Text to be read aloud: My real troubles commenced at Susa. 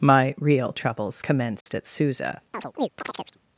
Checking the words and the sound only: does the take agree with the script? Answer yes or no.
no